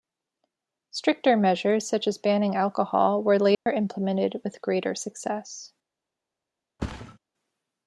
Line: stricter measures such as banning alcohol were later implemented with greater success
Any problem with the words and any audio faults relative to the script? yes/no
yes